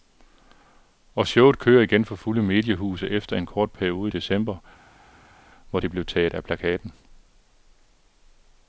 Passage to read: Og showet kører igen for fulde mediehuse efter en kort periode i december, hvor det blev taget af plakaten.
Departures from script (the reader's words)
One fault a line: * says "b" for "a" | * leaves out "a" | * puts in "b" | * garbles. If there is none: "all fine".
all fine